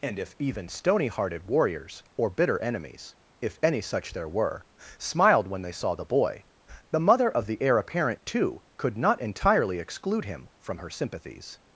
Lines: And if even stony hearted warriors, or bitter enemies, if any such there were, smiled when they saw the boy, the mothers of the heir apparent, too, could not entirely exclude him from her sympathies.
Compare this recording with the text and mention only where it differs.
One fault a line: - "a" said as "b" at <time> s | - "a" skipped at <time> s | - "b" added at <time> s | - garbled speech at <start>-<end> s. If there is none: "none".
- "mothers" said as "mother" at 7.0 s